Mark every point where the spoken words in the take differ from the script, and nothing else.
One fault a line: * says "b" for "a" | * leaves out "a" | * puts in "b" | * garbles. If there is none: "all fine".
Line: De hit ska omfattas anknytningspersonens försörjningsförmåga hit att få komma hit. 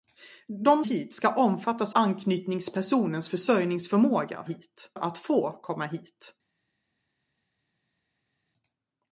all fine